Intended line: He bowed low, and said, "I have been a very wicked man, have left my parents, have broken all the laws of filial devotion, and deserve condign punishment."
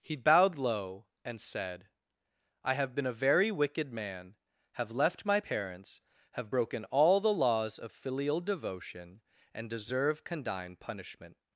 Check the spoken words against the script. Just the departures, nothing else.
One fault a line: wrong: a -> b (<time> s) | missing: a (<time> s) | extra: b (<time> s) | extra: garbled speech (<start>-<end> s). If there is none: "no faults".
no faults